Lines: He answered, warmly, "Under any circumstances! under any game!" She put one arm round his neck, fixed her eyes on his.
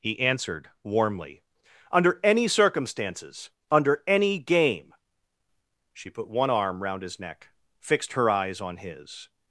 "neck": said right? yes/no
yes